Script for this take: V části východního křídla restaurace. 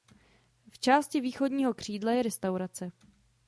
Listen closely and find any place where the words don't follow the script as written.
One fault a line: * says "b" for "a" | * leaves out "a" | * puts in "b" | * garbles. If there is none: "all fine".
* puts in "je"